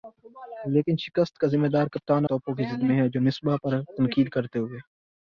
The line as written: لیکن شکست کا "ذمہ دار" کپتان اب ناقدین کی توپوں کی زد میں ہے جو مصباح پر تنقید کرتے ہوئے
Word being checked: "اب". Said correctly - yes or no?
no